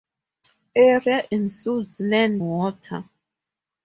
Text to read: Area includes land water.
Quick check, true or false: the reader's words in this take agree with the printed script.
true